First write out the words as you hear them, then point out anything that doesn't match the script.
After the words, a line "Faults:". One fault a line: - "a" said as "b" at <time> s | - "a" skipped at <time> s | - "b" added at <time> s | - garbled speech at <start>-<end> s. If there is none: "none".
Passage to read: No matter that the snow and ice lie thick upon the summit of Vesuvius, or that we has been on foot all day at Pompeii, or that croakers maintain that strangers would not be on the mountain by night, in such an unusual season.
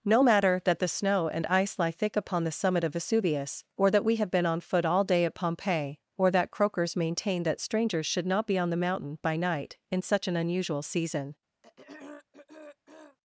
No matter that the snow and ice lie thick upon the summit of Vesuvius, or that we have been on foot all day at Pompeii, or that croakers maintain that strangers should not be on the mountain by night, in such an unusual season.
Faults:
- "has" said as "have" at 4.2 s
- "would" said as "should" at 8.1 s